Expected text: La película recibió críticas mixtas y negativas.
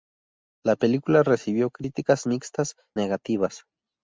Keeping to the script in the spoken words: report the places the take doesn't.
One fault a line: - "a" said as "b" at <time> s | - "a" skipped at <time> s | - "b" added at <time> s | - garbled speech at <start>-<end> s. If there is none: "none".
- "y" skipped at 2.8 s